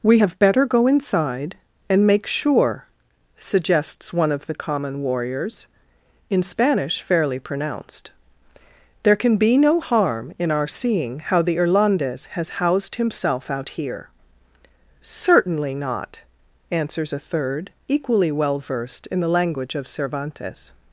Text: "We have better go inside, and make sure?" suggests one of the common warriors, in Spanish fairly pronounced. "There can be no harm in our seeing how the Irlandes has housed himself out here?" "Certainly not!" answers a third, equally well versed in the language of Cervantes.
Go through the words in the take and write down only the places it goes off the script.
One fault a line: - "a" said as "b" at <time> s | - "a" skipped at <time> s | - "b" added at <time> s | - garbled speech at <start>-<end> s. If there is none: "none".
none